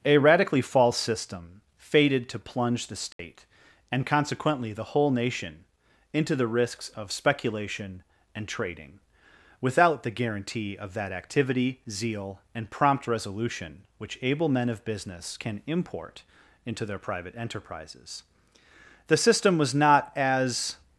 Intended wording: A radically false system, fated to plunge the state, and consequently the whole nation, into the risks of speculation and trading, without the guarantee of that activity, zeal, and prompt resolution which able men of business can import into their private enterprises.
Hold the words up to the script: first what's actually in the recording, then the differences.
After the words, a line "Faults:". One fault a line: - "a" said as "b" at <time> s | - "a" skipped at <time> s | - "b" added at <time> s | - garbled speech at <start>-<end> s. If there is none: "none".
A radically false system, fated to plunge the state, and consequently the whole nation, into the risks of speculation and trading, without the guarantee of that activity, zeal, and prompt resolution which able men of business can import into their private enterprises. The system was not as
Faults:
- "The system was not as" added at 19.1 s